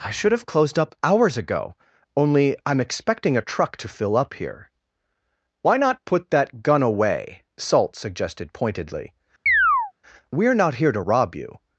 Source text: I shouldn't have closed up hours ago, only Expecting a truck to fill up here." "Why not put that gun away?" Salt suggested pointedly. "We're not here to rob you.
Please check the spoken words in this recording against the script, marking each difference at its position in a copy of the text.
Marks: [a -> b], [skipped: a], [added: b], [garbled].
I [shouldn't -> should] have closed up hours ago, only [added: I'm] Expecting a truck to fill up here." "Why not put that gun away?" Salt suggested pointedly. "We're not here to rob you.